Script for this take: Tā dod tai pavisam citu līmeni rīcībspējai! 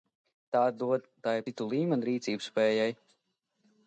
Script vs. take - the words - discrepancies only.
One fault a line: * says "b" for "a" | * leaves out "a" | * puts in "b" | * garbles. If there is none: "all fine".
* leaves out "pavisam"